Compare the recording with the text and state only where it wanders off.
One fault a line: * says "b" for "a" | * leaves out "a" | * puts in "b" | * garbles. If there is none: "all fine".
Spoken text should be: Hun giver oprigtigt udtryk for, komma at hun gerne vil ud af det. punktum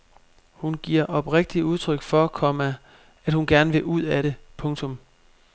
all fine